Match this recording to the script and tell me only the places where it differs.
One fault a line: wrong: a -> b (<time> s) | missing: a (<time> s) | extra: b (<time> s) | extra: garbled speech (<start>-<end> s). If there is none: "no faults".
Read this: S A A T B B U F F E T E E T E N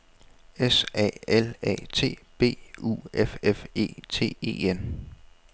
extra: L (1.3 s)
missing: B (2.6 s)
missing: E T E (4.7 s)